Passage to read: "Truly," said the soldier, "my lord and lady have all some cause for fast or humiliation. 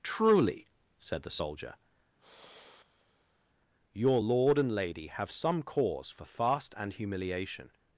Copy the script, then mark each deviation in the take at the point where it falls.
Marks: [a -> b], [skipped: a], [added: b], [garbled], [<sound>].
"Truly," said the soldier, [sigh] ["my -> your] lord and lady have [skipped: all] some cause for fast [or -> and] humiliation.